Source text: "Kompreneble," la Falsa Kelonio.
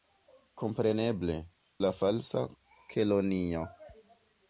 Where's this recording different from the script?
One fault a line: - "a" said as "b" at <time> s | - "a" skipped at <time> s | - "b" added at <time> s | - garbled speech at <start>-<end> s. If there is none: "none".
none